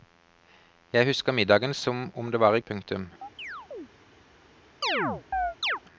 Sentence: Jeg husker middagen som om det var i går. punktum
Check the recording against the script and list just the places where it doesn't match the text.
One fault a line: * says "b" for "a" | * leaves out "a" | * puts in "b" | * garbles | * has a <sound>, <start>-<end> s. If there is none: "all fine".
* leaves out "går"
* has a chirp, 3.2-3.9 s
* has a chirp, 4.8-5.8 s